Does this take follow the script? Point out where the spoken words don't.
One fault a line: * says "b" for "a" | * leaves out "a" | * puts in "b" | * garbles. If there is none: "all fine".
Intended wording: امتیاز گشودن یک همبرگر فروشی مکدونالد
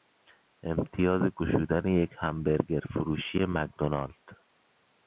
all fine